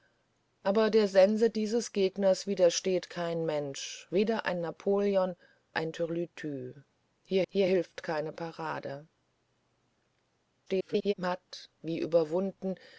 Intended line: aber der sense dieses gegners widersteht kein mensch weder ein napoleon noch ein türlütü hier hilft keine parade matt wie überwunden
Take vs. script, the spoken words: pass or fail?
fail